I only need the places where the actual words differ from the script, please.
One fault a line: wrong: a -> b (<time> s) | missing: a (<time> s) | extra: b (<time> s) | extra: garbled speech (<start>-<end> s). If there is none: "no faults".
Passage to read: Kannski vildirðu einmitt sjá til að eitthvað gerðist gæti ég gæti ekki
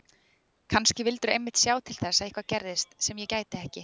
extra: þess (2.0 s)
wrong: gæti -> sem (3.1 s)